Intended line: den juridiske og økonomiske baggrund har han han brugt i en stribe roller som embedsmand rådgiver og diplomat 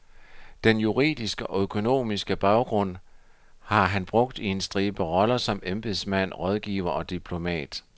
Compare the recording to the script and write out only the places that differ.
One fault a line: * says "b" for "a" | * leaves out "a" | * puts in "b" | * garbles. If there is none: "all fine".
* leaves out "han"